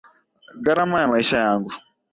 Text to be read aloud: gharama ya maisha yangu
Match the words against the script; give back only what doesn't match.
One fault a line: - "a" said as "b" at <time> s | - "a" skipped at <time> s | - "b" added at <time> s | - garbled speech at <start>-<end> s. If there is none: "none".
none